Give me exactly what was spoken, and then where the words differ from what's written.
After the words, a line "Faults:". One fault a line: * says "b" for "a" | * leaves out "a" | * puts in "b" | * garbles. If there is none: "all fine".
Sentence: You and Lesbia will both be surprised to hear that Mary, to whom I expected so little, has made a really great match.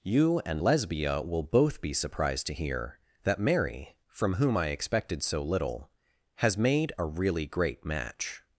You and Lesbia will both be surprised to hear that Mary, from whom I expected so little, has made a really great match.
Faults:
* says "from" for "to"